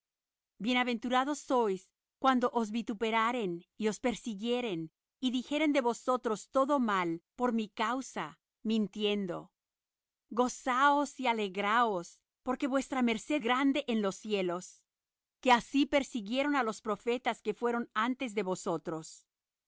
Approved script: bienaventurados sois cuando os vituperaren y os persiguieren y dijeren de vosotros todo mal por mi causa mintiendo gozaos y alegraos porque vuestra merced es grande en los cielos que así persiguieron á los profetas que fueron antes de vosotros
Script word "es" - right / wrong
wrong